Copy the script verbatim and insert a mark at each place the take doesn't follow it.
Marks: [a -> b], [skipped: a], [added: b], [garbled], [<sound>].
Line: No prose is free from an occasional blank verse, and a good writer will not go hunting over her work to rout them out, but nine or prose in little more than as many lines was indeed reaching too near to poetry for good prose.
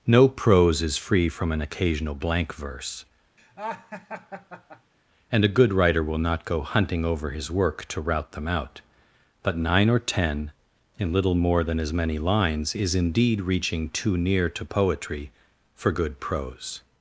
No prose is free from an occasional blank verse, [laugh] and a good writer will not go hunting over [her -> his] work to rout them out, but nine or [prose -> ten] in little more than as many lines [was -> is] indeed reaching too near to poetry for good prose.